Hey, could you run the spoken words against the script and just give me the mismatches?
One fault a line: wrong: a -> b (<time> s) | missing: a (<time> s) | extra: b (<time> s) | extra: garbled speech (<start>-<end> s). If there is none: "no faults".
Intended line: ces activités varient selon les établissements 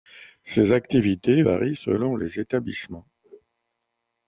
no faults